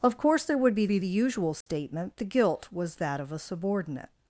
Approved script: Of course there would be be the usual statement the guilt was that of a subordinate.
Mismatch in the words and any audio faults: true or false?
true